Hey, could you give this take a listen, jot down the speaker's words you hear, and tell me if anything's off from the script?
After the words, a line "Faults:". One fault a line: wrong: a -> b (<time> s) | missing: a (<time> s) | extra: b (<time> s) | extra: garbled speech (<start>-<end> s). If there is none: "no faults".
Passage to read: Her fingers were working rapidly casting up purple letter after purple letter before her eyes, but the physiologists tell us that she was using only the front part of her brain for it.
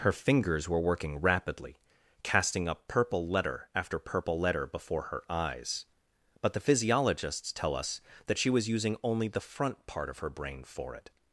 Her fingers were working rapidly casting up purple letter after purple letter before her eyes, but the physiologists tell us that she was using only the front part of her brain for it.
Faults:
no faults